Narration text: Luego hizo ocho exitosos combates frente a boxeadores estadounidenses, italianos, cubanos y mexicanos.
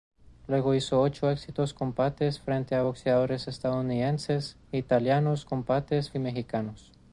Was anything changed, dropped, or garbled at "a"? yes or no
no